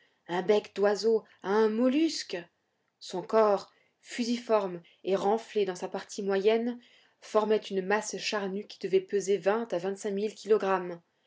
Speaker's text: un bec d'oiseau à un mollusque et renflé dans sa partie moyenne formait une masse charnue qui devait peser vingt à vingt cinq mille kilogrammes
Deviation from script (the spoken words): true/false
true